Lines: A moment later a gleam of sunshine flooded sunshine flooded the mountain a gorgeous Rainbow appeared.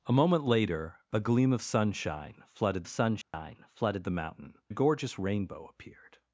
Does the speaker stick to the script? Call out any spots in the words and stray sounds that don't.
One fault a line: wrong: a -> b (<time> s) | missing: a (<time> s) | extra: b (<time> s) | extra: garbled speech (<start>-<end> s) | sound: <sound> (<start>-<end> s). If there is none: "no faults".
sound: dropout (3.2-3.3 s)